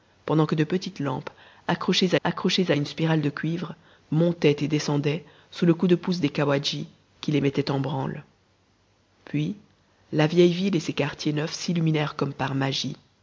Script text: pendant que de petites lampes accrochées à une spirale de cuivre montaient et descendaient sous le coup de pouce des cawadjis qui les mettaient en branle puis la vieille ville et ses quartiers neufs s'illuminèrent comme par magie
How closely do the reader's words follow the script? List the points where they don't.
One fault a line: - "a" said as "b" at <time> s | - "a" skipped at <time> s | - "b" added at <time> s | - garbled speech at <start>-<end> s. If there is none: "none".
- "accrochées" added at 2.2 s